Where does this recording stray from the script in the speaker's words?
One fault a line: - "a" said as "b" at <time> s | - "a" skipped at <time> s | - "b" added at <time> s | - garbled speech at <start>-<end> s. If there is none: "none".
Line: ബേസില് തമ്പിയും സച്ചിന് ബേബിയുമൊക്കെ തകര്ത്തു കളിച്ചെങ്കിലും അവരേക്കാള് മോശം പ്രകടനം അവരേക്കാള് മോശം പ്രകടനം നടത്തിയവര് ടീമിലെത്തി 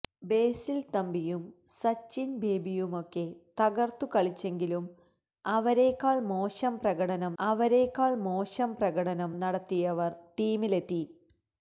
none